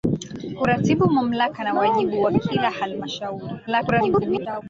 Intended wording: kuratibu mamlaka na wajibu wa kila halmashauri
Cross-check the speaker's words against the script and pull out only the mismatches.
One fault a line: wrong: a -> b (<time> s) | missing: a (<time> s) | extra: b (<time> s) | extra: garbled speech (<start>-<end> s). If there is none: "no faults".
extra: garbled speech (3.7-4.6 s)